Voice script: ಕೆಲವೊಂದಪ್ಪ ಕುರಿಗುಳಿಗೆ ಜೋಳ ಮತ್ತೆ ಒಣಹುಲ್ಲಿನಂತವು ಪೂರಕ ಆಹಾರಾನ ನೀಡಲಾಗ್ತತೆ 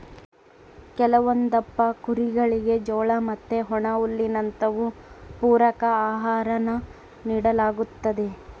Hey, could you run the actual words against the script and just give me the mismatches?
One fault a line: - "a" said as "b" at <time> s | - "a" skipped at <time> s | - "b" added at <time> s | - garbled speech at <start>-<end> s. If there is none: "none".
none